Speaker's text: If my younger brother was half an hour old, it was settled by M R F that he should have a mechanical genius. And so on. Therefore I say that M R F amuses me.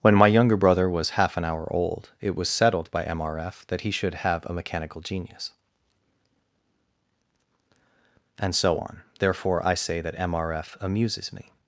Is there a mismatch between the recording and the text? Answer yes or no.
yes